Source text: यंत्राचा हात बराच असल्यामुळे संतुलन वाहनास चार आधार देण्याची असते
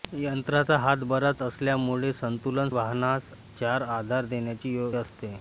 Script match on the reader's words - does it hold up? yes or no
yes